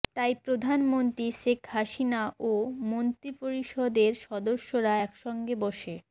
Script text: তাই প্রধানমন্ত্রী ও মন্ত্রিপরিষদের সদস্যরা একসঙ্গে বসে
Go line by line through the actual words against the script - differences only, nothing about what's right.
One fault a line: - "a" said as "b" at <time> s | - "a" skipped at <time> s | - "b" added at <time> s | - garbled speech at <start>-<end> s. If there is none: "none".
- "শেখ হাসিনা" added at 1.4 s